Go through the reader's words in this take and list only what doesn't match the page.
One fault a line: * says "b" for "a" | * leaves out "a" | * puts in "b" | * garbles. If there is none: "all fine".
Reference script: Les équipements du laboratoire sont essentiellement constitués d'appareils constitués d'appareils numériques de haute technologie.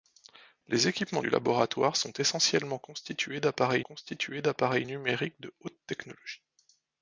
all fine